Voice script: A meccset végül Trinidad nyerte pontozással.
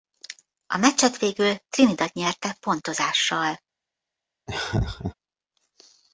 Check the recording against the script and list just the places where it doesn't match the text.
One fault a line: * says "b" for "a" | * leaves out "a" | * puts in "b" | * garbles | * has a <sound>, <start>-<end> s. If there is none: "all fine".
* has a laugh, 4.5-5.1 s